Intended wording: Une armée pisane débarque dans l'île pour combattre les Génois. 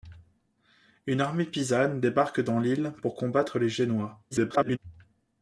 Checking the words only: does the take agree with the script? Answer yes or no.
no